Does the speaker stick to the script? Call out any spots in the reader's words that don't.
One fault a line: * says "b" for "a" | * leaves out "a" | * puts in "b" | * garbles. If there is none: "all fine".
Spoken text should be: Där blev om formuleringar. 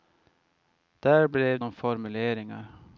all fine